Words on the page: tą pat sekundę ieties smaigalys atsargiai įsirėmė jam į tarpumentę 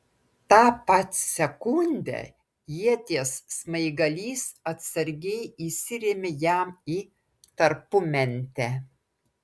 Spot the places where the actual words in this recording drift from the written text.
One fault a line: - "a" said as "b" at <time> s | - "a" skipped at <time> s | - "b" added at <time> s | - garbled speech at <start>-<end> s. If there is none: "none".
none